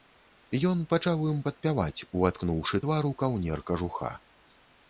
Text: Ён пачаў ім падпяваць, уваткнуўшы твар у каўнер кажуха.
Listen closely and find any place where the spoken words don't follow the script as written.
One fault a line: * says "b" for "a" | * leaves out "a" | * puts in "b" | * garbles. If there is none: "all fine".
all fine